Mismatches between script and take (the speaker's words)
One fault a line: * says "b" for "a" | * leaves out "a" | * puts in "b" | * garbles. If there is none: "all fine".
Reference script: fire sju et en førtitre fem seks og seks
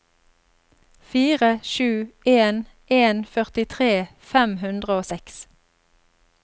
* says "en" for "et"
* says "hundre" for "seks"